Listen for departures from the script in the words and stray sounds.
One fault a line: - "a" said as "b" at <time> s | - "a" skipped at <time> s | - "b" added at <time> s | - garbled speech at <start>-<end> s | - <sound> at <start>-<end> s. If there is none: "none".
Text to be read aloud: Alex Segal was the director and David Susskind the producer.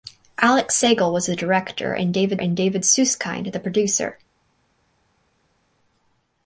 - "and David" added at 2.4 s